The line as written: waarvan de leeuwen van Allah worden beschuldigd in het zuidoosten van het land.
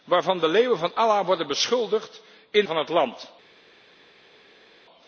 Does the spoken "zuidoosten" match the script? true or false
false